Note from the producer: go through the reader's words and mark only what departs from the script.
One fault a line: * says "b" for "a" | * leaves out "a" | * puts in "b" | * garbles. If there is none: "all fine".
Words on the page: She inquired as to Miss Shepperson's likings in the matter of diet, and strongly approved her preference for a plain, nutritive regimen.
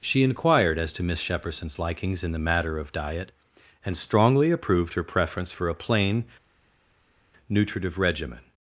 all fine